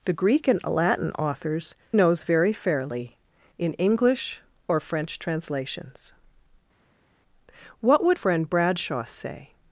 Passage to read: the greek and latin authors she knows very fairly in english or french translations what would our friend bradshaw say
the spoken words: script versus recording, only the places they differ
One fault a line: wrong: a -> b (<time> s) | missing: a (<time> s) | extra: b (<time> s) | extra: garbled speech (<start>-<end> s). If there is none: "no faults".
missing: she (1.8 s)
missing: our (8.2 s)